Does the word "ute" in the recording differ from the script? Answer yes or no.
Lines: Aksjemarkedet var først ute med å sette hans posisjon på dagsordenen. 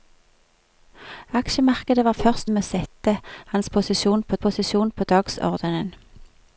yes